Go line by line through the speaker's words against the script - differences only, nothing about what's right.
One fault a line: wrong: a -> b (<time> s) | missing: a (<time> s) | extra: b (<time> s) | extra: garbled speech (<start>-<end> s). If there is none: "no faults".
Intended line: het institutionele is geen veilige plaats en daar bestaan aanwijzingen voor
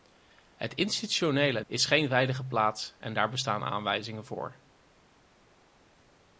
no faults